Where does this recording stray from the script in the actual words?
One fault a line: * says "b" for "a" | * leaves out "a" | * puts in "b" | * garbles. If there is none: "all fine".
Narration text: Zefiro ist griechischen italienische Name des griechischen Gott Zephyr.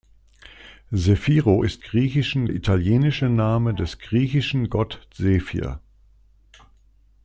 all fine